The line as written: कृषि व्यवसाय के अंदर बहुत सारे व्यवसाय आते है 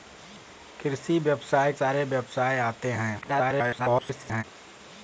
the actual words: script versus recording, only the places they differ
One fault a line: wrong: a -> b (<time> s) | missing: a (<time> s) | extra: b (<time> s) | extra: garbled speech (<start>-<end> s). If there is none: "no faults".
missing: के अंदर बहुत (1.7 s)
extra: garbled speech (3.2-4.4 s)